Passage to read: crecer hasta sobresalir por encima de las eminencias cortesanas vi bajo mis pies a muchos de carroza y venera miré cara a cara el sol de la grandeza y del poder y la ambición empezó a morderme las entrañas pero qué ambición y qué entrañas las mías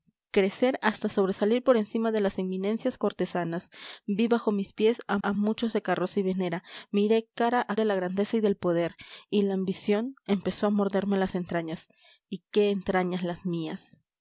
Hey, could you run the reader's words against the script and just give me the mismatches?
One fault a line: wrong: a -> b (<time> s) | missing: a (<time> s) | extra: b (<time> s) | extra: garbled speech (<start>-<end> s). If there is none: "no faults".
extra: a (5.2 s)
missing: cara el sol (7.7 s)
missing: pero qué ambición (11.9 s)